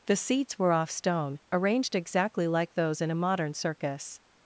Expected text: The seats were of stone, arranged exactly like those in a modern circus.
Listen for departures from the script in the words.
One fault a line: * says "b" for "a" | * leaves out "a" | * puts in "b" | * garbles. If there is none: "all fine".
* says "off" for "of"